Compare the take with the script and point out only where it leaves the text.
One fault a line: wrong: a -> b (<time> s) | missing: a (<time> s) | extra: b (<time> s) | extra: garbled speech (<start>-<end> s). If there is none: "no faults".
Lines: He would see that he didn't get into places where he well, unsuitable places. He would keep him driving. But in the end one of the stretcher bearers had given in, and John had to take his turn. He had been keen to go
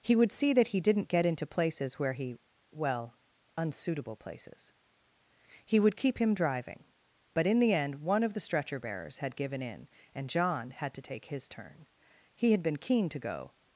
no faults